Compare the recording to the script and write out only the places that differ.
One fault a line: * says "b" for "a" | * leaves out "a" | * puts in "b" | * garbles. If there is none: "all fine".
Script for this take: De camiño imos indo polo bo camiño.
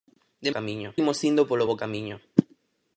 all fine